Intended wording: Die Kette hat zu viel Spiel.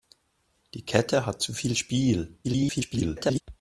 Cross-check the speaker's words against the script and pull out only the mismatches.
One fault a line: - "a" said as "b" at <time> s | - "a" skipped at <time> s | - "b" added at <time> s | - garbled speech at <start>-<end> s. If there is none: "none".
- garbled speech at 2.4-3.4 s